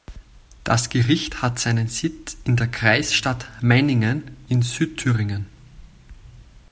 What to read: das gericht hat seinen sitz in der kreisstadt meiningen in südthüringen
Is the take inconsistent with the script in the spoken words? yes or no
no